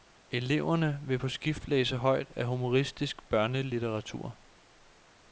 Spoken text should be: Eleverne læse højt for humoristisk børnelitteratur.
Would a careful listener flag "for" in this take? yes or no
yes